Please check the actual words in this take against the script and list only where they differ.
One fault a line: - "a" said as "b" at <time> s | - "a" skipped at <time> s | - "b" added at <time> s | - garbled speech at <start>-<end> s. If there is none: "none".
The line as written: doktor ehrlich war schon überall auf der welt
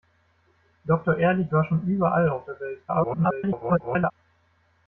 - garbled speech at 2.9-4.1 s